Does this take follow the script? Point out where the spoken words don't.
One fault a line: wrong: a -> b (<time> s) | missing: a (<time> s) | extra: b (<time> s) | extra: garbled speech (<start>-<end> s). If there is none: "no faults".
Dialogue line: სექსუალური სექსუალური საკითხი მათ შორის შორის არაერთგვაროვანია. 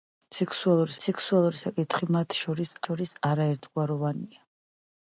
no faults